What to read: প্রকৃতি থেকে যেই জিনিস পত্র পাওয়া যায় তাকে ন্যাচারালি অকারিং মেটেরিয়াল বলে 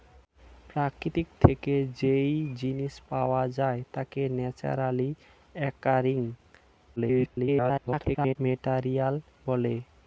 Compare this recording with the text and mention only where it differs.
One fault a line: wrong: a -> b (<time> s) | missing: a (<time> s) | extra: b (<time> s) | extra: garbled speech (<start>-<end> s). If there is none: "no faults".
missing: পত্র (2.9 s)
extra: garbled speech (7.0-8.4 s)